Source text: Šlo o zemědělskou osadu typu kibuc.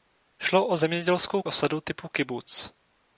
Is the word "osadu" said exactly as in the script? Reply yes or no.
yes